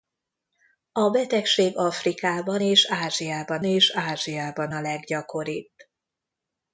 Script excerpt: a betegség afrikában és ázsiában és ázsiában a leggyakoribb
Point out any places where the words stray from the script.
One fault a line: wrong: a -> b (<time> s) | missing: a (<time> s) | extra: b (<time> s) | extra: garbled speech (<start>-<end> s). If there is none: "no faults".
no faults